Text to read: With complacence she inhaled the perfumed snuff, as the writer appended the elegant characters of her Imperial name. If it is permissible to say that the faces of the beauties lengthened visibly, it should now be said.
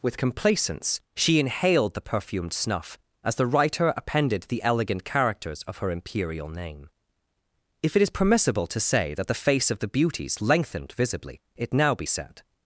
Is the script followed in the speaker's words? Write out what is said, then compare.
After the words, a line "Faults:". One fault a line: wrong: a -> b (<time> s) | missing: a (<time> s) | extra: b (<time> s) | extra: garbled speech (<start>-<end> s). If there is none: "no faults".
With complacence she inhaled the perfumed snuff, as the writer appended the elegant characters of her Imperial name. If it is permissible to say that the face of the beauties lengthened visibly, it now be said.
Faults:
wrong: faces -> face (9.3 s)
missing: should (11.7 s)